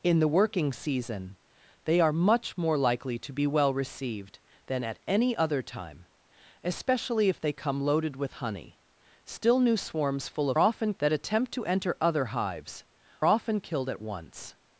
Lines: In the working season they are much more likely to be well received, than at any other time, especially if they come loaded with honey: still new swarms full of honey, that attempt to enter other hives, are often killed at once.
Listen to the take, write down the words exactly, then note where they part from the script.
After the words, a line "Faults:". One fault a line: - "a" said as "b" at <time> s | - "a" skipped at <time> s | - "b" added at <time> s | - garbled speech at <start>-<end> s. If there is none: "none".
In the working season they are much more likely to be well received, than at any other time, especially if they come loaded with honey: still new swarms full of often, that attempt to enter other hives, often killed at once.
Faults:
- "honey" said as "often" at 10.6 s
- "are" skipped at 12.8 s